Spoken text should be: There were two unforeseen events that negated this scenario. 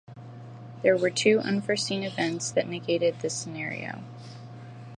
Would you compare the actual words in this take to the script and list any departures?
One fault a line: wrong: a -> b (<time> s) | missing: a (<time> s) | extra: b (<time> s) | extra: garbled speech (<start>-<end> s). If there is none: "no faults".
no faults